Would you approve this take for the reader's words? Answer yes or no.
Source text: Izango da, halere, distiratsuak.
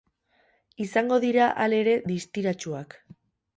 no